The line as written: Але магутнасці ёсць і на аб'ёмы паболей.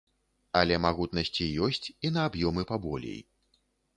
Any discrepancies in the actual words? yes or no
no